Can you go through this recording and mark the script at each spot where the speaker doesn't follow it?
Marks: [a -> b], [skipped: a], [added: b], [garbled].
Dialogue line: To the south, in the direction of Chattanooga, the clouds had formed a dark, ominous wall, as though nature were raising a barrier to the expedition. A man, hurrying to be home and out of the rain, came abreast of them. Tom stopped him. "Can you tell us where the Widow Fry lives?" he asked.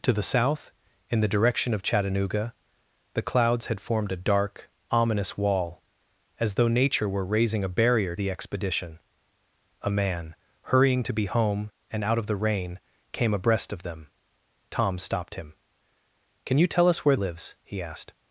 To the south, in the direction of Chattanooga, the clouds had formed a dark, ominous wall, as though nature were raising a barrier [skipped: to] the expedition. A man, hurrying to be home and out of the rain, came abreast of them. Tom stopped him. "Can you tell us where [skipped: the Widow Fry] lives?" he asked.